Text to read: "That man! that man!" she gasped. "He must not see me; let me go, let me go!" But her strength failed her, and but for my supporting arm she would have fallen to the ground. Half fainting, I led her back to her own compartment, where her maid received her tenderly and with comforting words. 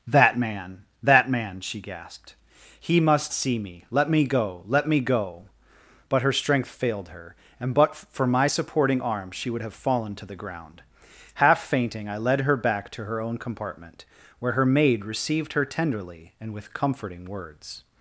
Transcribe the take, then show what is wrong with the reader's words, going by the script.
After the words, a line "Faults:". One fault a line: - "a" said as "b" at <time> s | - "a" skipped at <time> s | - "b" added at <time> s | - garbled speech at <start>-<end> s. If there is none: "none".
"That man! that man!" she gasped. "He must see me; let me go, let me go!" But her strength failed her, and but for my supporting arm she would have fallen to the ground. Half fainting, I led her back to her own compartment, where her maid received her tenderly and with comforting words.
Faults:
- "not" skipped at 3.3 s